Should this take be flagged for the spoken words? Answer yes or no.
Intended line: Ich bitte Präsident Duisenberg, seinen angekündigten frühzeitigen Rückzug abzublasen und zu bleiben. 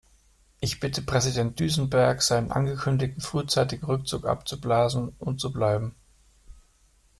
no